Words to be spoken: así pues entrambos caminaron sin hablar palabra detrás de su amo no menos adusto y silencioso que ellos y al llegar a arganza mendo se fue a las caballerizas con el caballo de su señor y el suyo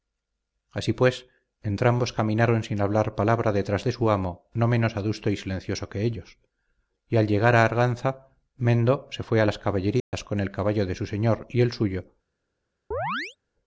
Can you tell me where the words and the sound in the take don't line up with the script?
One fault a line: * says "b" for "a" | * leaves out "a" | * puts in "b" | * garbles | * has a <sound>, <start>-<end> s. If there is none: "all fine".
* has a dropout, 10.0-10.1 s
* has a chirp, 12.9-13.4 s